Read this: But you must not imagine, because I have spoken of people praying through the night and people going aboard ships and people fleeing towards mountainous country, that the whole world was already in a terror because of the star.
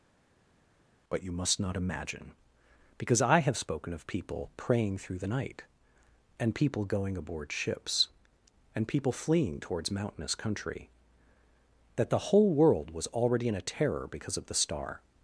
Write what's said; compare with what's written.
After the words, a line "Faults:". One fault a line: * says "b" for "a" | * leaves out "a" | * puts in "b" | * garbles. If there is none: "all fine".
But you must not imagine, because I have spoken of people praying through the night and people going aboard ships and people fleeing towards mountainous country, that the whole world was already in a terror because of the star.
Faults:
all fine